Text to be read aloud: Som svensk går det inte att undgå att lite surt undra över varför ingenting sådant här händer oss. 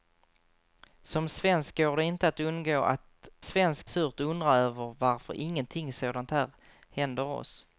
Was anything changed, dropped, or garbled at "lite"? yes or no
yes